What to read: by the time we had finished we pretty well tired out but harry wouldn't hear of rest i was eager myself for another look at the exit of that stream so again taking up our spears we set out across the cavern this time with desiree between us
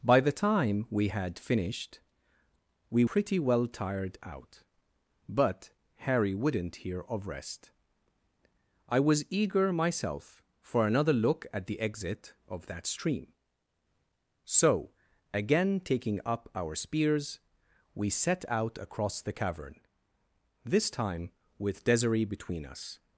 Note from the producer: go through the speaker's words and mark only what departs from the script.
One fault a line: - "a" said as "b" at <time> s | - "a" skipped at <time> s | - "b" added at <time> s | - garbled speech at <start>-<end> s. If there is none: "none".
none